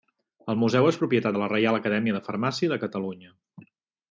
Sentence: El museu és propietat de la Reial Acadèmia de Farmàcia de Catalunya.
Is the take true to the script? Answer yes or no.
yes